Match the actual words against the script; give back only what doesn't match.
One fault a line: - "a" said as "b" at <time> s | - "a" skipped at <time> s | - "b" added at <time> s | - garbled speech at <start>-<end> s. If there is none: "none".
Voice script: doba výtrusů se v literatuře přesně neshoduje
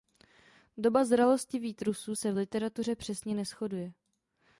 - "zralosti" added at 1.1 s